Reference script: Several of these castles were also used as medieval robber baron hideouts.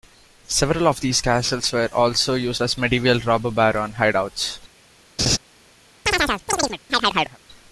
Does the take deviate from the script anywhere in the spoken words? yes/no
no